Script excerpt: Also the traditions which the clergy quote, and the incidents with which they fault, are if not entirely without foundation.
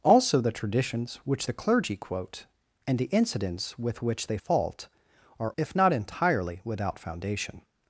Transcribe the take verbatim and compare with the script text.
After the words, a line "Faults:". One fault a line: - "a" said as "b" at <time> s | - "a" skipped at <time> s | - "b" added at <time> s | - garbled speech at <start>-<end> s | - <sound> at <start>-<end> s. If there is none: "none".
Also the traditions which the clergy quote, and the incidents with which they fault, are if not entirely without foundation.
Faults:
none